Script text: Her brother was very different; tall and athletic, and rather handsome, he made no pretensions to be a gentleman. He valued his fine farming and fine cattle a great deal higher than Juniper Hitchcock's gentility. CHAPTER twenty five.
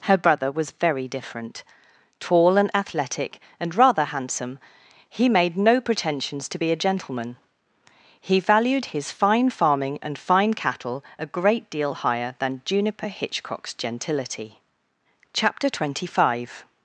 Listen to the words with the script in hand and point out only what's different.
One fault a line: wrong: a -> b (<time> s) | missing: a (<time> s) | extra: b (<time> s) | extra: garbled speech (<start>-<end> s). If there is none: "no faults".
no faults